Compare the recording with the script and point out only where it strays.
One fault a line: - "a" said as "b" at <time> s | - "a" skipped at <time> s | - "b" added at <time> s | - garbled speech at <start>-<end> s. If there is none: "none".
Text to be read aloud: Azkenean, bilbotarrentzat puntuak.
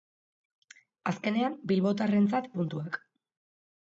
none